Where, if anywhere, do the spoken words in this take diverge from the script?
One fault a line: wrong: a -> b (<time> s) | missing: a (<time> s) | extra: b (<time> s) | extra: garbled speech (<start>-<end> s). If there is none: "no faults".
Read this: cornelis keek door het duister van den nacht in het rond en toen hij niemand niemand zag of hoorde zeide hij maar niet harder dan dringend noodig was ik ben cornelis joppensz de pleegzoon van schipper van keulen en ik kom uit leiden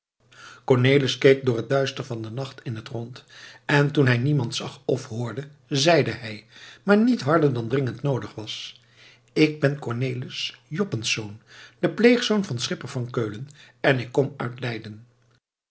missing: niemand (4.5 s)